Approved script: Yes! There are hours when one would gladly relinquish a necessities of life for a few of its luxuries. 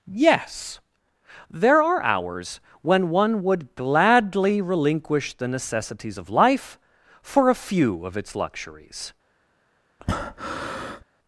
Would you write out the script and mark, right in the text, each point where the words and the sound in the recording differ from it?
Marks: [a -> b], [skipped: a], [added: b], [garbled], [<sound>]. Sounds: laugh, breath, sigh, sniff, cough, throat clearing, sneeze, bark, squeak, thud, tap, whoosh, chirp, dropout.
Yes! There are hours when one would gladly relinquish [a -> the] necessities of life for a few of its luxuries. [breath]